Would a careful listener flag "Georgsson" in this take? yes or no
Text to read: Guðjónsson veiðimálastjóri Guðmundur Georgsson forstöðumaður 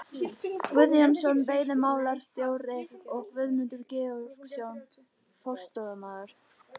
no